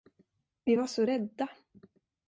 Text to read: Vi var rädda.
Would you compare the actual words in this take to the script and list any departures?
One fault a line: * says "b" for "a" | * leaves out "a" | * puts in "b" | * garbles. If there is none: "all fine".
* puts in "så"